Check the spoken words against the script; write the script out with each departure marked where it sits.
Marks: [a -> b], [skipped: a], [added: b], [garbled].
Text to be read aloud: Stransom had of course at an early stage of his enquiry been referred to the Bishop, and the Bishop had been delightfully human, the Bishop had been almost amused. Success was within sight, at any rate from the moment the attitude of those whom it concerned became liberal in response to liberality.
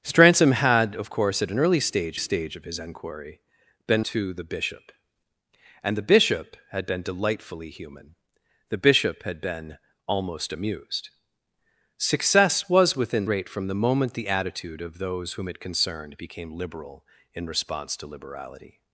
Stransom had of course at an early stage [added: stage] of his enquiry been [skipped: referred] to the Bishop, and the Bishop had been delightfully human, the Bishop had been almost amused. Success was within [skipped: sight, at any] rate from the moment the attitude of those whom it concerned became liberal in response to liberality.